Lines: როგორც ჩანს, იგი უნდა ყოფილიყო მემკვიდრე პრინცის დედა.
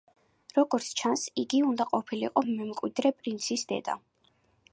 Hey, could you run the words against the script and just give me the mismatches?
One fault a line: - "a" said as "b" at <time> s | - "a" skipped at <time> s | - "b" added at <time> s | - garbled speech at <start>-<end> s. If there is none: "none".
none